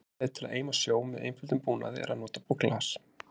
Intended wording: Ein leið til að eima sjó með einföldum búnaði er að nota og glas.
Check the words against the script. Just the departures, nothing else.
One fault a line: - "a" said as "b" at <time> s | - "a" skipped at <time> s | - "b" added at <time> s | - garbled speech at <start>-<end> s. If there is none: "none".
none